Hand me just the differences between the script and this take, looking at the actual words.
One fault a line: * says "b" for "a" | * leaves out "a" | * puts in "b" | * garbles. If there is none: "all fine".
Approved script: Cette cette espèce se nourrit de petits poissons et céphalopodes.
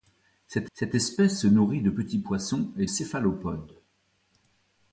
all fine